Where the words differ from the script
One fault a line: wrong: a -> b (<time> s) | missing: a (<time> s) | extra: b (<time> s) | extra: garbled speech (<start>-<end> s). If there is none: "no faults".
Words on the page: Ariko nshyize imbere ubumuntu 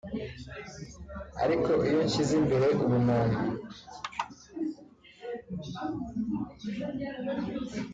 extra: iyo (1.9 s)